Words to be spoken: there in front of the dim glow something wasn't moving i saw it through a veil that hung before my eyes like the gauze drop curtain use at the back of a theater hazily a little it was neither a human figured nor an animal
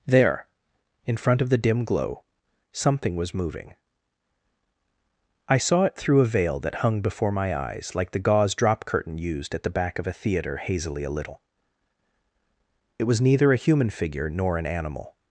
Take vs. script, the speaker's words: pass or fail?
fail